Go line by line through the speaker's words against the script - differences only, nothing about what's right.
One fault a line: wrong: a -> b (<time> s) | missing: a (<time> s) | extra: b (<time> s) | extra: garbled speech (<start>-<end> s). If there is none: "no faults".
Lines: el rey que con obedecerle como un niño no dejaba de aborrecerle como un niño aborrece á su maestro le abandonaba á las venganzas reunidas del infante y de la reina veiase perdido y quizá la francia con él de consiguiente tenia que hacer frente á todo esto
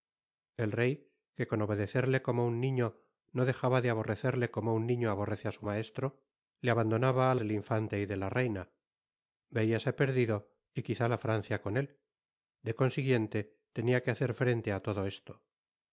missing: las venganzas reunidas (7.3 s)